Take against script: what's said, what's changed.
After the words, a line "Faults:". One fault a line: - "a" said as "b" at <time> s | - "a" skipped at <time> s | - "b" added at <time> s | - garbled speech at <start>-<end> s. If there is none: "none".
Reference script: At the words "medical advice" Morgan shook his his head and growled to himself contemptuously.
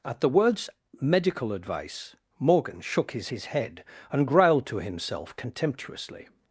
At the words "medical advice" Morgan shook his his head and growled to himself contemptuously.
Faults:
none